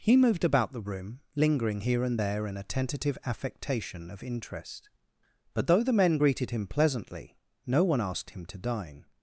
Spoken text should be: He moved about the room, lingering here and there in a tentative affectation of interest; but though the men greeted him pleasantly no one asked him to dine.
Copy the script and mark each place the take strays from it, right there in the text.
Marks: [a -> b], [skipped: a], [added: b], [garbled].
He moved about the room, lingering here and there in a tentative affectation of interest; but though the men greeted him pleasantly no one asked him to dine.